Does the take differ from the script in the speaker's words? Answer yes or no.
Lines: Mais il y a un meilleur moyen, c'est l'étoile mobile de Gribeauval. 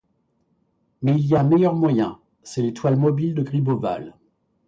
no